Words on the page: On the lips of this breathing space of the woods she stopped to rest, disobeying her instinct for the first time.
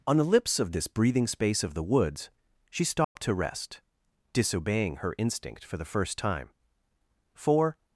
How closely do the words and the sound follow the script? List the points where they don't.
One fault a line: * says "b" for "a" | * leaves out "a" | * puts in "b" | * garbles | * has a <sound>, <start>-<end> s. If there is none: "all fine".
* has a dropout, 3.0-3.2 s
* puts in "For"